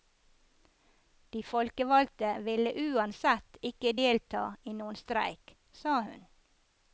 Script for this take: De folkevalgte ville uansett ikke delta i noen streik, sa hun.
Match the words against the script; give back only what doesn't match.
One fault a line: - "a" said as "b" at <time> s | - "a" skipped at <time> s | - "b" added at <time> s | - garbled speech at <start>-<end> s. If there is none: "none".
none